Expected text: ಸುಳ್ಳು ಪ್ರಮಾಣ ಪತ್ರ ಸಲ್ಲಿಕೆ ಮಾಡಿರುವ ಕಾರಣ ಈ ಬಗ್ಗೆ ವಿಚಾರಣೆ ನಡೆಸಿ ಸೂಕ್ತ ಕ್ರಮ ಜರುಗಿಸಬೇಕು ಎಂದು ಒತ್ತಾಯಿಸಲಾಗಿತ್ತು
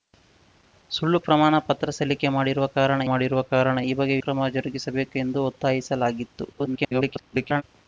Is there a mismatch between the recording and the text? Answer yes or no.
yes